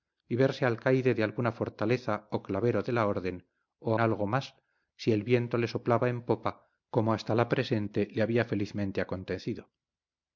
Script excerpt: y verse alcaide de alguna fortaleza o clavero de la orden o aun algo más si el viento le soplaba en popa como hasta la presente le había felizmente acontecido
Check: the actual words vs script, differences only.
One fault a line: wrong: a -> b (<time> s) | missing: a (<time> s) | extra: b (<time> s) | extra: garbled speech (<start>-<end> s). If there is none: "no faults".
missing: aun (3.9 s)